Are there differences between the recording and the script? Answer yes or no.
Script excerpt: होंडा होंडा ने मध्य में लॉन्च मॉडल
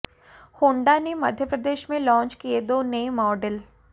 yes